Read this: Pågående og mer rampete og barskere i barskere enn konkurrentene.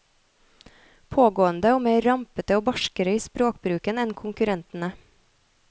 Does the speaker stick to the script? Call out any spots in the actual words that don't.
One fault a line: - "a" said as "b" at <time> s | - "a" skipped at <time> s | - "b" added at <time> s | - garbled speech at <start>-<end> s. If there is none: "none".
- "barskere" said as "språkbruken" at 3.3 s